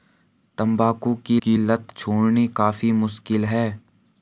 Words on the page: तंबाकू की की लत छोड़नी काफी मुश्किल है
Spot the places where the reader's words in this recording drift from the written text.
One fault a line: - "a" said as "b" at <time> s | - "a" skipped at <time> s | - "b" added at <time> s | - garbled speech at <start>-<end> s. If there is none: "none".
none